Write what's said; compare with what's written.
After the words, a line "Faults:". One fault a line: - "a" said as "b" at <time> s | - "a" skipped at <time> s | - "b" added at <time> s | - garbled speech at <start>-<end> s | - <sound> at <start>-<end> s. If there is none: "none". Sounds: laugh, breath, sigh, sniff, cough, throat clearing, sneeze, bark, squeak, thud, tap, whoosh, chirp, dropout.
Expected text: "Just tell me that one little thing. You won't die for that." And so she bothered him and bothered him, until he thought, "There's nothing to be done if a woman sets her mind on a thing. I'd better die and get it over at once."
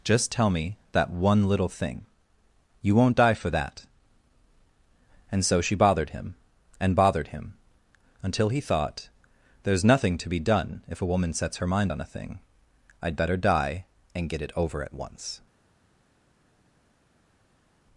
"Just tell me that one little thing. You won't die for that." And so she bothered him and bothered him, until he thought, "There's nothing to be done if a woman sets her mind on a thing. I'd better die and get it over at once."
Faults:
none